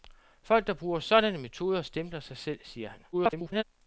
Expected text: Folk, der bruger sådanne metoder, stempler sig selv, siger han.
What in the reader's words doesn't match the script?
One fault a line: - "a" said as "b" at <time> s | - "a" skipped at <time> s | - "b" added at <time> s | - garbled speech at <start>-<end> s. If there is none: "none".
- garbled speech at 3.1-3.6 s